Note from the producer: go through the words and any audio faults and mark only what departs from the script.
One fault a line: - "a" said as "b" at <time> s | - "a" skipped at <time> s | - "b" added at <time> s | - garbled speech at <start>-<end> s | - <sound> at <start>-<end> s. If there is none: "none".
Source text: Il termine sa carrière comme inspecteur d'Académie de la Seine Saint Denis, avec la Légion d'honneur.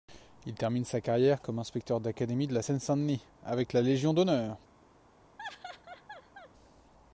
- laugh at 5.4-6.5 s